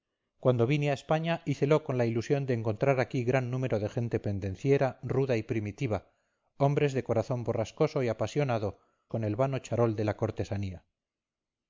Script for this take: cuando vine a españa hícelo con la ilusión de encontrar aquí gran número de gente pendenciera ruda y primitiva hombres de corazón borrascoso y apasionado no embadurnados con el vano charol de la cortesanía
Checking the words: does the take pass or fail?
fail